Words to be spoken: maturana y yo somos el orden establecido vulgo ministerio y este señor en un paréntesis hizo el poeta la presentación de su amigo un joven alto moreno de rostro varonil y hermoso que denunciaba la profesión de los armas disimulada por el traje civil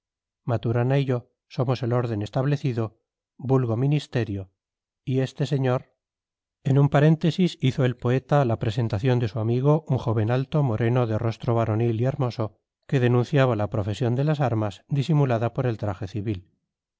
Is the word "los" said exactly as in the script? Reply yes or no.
no